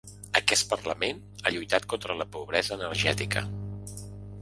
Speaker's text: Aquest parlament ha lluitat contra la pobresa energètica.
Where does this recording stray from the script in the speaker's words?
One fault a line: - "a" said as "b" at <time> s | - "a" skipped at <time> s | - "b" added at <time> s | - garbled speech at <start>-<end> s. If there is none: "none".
none